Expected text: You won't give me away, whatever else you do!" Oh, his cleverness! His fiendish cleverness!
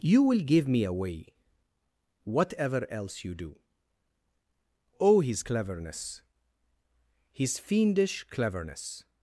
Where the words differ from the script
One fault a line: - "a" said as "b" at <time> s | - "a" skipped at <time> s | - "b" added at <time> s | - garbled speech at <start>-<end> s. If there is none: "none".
- "won't" said as "will" at 0.2 s